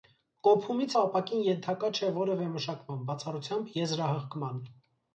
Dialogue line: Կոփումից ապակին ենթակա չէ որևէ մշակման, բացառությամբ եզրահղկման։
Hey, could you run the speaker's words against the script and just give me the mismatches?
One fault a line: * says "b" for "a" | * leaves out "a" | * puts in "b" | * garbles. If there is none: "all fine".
all fine